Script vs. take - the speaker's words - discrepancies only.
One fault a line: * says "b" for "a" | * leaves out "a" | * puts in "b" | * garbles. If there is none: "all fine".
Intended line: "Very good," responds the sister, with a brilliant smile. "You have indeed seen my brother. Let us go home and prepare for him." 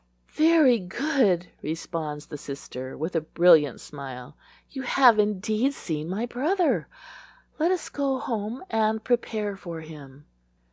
all fine